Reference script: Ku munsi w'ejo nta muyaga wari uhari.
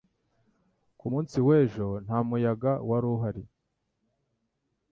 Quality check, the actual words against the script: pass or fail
pass